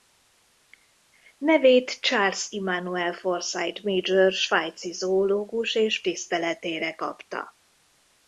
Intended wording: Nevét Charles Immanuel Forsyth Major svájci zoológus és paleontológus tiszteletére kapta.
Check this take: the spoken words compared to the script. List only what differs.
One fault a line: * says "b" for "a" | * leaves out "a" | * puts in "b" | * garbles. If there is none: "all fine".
* leaves out "paleontológus"